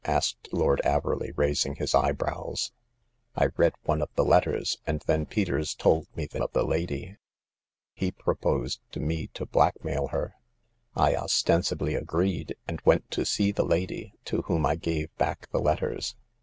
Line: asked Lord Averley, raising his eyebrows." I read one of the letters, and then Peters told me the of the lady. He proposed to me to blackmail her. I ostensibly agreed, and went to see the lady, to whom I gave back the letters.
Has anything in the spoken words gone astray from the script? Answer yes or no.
no